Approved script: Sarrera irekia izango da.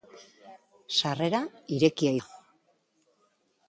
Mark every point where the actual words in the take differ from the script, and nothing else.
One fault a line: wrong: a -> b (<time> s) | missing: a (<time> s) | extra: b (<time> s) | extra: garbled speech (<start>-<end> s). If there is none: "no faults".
missing: izango (2.1 s)